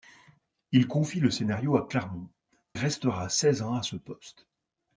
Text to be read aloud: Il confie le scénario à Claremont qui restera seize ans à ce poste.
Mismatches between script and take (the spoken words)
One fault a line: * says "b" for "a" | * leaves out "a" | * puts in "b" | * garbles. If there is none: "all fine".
* leaves out "qui"